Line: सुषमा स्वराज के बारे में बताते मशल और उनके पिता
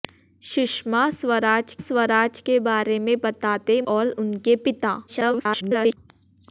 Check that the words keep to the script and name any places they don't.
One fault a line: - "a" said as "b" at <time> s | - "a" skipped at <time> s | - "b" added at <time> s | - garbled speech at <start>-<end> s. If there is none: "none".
- "स्वराज" added at 1.8 s
- "मशल" skipped at 3.8 s
- garbled speech at 5.1-6.0 s